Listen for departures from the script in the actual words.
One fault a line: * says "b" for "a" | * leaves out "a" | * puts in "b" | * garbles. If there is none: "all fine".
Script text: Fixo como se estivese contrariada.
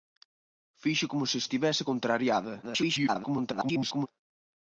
* garbles